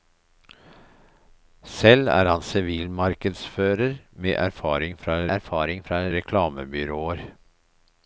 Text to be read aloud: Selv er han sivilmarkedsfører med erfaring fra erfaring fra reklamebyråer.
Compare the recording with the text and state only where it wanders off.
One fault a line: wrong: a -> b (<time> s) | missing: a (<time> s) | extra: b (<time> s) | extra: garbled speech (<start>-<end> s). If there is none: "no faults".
no faults